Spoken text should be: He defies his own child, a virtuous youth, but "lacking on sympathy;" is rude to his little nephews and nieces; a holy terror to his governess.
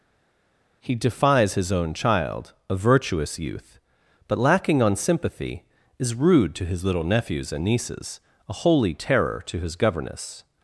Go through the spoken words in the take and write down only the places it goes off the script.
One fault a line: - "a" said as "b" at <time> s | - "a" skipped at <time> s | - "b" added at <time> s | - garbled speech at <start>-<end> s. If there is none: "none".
none